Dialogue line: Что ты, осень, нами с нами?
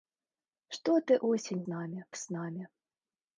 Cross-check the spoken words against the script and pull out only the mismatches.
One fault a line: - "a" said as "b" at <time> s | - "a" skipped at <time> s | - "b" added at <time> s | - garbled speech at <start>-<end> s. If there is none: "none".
none